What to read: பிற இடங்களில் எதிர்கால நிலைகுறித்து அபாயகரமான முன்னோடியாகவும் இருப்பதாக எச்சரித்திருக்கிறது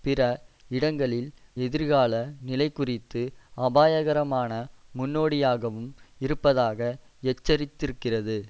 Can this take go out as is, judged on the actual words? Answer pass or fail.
pass